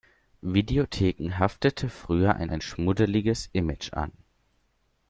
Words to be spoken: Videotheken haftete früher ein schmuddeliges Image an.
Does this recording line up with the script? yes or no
no